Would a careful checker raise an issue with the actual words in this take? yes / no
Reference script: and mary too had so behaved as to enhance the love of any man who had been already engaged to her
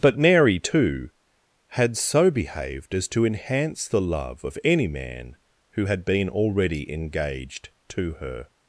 yes